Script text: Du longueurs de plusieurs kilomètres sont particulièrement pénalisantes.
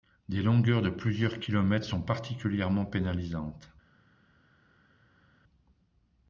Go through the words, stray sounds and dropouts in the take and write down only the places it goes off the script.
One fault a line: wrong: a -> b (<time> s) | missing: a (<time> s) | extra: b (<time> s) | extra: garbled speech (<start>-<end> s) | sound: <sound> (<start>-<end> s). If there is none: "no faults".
wrong: Du -> Des (0.3 s)